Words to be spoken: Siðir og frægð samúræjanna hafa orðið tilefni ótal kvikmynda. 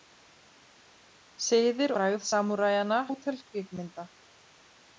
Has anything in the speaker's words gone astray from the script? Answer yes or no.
yes